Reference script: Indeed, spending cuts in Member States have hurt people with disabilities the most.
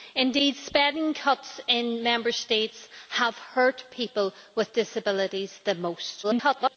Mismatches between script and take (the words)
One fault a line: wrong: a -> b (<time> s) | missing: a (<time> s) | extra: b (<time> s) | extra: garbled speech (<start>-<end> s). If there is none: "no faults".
extra: garbled speech (6.2-6.8 s)